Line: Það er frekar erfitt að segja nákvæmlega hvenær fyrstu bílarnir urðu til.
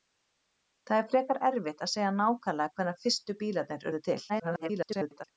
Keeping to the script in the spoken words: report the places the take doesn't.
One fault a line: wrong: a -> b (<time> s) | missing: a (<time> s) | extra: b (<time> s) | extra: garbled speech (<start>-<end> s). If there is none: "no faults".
extra: garbled speech (4.3-5.2 s)